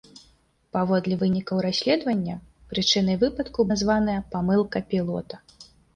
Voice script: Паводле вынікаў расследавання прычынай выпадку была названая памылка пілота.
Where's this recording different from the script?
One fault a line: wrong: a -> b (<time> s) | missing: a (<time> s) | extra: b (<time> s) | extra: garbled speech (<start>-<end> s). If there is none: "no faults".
missing: была (3.7 s)